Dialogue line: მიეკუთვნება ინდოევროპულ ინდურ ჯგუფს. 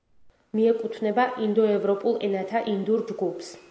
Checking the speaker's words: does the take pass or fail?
fail